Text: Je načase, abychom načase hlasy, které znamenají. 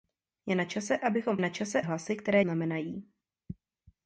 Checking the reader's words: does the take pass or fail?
pass